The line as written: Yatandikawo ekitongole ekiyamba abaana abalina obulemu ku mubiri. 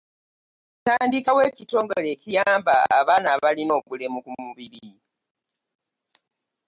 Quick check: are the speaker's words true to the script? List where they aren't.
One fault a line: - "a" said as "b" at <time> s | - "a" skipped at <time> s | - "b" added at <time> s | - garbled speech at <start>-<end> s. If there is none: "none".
none